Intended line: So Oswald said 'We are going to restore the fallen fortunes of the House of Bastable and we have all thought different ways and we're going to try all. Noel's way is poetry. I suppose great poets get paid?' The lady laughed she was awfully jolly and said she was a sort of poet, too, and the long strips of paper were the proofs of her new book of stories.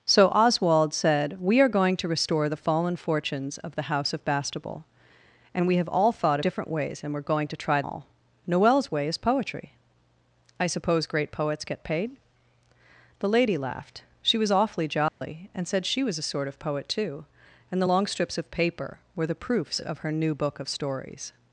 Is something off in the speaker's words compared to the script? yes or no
no